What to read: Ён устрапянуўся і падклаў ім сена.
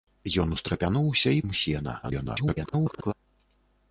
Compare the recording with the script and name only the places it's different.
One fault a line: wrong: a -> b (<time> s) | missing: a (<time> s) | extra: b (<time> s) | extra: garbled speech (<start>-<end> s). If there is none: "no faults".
missing: падклаў (1.4 s)
extra: garbled speech (2.0-3.1 s)